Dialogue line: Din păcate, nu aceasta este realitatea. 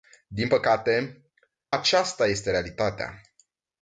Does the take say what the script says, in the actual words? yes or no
no